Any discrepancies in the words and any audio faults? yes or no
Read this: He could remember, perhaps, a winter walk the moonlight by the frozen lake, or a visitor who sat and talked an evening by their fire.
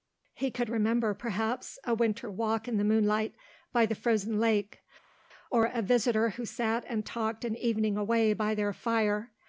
yes